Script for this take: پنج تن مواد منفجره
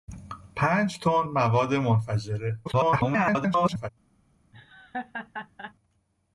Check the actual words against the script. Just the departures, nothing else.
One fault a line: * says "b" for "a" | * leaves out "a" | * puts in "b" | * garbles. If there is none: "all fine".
* garbles